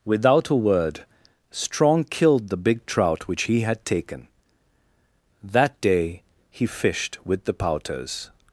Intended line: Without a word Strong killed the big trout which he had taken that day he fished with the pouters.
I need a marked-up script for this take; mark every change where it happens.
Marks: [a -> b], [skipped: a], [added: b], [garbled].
Without a word Strong killed the big trout which he had taken that day he fished with the pouters.